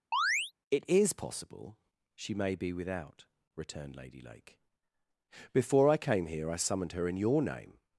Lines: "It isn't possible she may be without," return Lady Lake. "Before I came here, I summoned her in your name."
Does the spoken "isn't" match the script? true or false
false